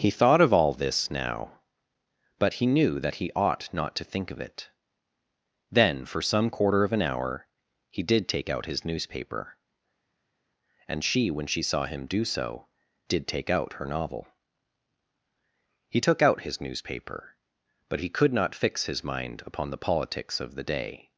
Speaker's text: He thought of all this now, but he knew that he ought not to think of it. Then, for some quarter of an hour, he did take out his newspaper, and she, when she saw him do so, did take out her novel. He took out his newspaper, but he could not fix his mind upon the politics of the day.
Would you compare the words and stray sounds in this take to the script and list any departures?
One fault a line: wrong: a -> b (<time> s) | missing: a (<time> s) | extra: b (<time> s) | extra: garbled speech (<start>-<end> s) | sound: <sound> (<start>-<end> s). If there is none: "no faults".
no faults